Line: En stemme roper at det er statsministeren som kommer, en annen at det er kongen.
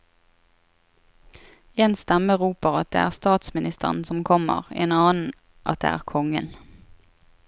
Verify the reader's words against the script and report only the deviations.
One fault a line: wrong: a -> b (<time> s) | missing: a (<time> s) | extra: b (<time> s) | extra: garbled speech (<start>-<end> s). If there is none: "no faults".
no faults